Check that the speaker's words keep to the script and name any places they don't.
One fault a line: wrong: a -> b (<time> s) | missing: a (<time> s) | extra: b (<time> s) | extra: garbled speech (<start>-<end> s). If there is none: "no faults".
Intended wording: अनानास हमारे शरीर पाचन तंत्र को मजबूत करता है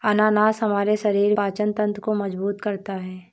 no faults